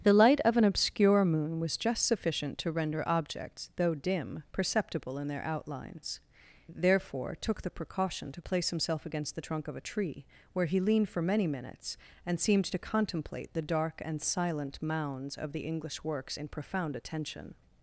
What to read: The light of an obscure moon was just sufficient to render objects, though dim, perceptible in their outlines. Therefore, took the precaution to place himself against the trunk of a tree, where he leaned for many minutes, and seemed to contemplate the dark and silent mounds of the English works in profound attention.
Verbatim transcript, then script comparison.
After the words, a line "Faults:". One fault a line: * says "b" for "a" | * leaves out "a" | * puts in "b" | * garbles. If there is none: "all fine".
The light of an obscure moon was just sufficient to render objects, though dim, perceptible in their outlines. Therefore, took the precaution to place himself against the trunk of a tree, where he leaned for many minutes, and seemed to contemplate the dark and silent mounds of the English works in profound attention.
Faults:
all fine